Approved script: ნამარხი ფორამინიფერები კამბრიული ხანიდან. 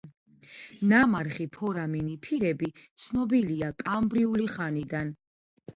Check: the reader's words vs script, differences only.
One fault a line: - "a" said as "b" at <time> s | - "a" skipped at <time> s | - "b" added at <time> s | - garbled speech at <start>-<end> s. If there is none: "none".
- "ცნობილია" added at 3.0 s